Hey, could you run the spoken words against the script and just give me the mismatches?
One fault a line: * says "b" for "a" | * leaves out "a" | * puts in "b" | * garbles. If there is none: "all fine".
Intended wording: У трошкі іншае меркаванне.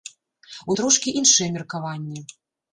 all fine